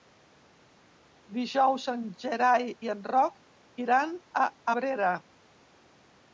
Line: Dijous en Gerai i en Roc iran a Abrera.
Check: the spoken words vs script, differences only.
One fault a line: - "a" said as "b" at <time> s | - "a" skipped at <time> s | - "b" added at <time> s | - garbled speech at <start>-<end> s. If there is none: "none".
none